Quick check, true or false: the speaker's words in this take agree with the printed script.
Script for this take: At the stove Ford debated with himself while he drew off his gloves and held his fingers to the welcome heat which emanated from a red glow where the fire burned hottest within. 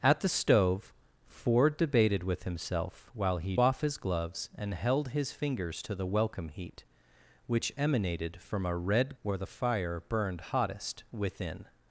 false